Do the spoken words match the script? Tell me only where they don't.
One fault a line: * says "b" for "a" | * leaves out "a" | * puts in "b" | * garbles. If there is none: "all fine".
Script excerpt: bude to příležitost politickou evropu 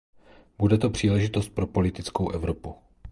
* puts in "pro"